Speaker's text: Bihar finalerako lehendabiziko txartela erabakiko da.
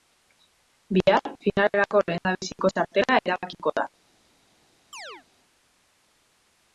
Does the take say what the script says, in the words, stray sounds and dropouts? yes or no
no